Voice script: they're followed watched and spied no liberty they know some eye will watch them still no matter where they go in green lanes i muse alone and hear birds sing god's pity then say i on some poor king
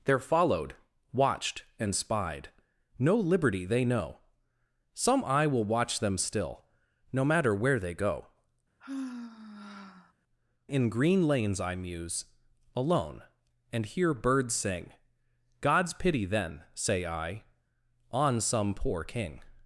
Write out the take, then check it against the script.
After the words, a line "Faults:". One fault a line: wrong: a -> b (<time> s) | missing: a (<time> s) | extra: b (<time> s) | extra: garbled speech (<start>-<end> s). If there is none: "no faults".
they're followed watched and spied no liberty they know some eye will watch them still no matter where they go in green lanes i muse alone and hear birds sing god's pity then say i on some poor king
Faults:
no faults